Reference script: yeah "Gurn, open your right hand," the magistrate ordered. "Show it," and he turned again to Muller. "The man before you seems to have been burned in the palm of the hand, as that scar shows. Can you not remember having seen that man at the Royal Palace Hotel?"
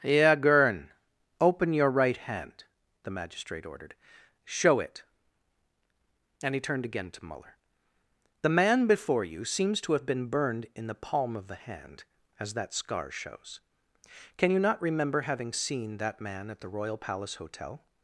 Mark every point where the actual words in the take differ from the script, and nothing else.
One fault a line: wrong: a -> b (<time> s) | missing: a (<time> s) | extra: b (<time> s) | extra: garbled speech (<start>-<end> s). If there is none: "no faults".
no faults